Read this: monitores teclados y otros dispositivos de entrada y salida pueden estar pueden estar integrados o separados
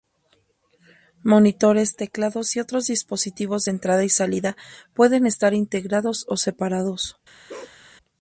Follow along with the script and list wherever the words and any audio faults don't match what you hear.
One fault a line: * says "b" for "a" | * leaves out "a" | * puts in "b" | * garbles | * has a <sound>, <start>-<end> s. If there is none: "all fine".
* leaves out "pueden estar"
* has a bark, 7.5-7.8 s